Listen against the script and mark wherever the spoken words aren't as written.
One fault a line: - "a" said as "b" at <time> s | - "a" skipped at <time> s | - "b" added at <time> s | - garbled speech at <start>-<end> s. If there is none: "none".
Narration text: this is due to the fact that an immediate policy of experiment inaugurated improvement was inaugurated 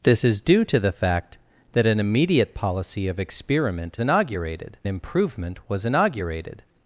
none